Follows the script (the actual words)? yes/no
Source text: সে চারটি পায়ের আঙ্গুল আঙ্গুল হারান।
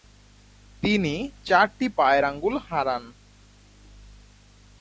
no